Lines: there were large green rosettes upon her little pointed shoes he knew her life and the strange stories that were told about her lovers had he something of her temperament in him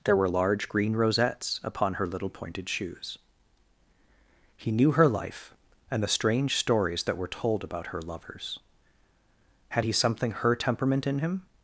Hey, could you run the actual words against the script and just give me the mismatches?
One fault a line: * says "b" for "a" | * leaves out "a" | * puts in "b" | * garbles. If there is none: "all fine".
* leaves out "of"